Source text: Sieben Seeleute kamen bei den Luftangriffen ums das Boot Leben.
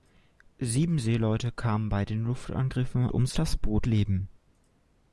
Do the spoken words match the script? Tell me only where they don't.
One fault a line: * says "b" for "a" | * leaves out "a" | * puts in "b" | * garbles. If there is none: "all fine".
all fine